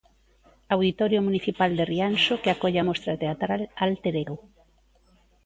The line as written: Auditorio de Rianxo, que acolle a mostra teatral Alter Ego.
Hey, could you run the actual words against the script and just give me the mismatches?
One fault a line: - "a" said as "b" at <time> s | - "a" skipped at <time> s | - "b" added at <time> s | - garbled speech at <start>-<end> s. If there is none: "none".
- "municipal" added at 1.3 s